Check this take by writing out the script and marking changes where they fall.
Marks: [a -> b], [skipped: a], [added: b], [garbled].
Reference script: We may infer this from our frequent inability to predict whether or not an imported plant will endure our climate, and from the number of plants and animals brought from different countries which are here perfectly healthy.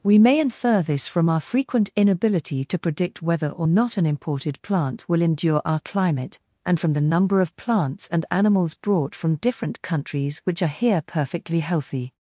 We may infer this from our frequent inability to predict whether or not an imported plant will endure our climate, and from the number of plants and animals brought from different countries which are here perfectly healthy.